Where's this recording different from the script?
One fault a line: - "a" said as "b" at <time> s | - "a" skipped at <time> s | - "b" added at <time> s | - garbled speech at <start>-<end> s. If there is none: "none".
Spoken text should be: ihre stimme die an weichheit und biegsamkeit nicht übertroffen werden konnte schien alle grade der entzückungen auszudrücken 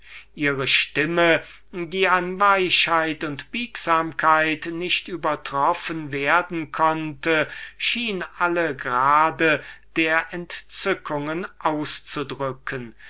none